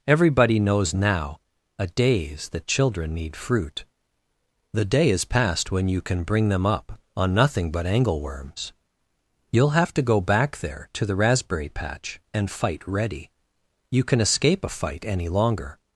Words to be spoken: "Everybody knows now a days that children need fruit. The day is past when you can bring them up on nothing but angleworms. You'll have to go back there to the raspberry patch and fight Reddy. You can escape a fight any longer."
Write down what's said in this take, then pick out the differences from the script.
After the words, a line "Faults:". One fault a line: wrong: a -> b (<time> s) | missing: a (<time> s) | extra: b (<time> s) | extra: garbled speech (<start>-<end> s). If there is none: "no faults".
"Everybody knows now a days that children need fruit. The day is past when you can bring them up on nothing but angleworms. You'll have to go back there to the raspberry patch and fight Reddy. You can escape a fight any longer."
Faults:
no faults